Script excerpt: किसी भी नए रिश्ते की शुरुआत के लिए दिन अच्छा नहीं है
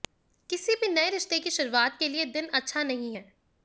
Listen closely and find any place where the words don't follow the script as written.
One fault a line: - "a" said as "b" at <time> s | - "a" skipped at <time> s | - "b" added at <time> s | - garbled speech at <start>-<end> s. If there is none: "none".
none